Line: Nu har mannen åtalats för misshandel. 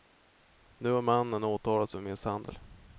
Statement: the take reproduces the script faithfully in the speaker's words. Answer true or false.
true